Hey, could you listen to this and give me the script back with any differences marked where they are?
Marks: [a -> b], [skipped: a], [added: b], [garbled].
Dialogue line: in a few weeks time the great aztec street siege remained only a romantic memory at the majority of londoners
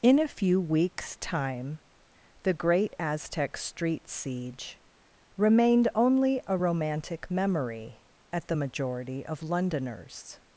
in a few weeks time the great aztec street siege remained only a romantic memory at the majority of londoners